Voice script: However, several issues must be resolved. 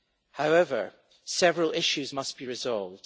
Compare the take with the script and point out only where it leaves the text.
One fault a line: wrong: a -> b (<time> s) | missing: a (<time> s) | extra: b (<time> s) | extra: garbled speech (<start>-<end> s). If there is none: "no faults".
no faults